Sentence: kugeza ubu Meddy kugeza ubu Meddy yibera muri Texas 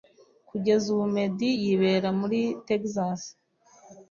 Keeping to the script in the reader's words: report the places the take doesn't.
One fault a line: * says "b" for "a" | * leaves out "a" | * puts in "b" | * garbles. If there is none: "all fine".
* leaves out "kugeza ubu Meddy"